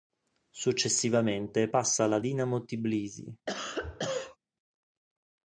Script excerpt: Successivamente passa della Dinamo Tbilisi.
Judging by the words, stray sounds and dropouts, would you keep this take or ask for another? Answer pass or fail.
fail